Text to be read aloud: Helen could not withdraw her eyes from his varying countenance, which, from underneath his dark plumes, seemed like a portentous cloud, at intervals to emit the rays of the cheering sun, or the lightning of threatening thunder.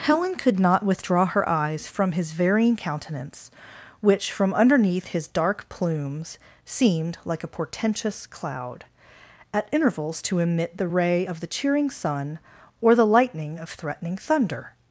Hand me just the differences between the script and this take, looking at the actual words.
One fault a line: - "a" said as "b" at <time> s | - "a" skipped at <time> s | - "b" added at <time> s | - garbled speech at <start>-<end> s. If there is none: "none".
- "rays" said as "ray" at 10.9 s